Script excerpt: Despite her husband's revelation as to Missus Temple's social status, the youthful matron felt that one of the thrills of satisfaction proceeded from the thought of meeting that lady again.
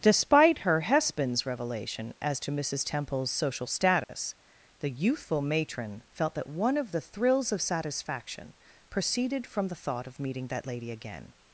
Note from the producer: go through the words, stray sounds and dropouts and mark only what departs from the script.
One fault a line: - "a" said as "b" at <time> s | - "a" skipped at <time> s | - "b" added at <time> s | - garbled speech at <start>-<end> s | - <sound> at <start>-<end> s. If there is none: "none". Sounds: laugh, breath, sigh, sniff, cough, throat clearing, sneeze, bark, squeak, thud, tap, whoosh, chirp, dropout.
- dropout at 4.0-4.1 s